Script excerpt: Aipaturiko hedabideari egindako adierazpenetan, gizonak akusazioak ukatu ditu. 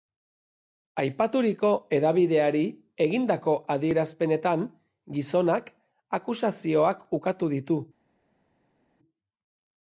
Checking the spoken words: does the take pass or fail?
pass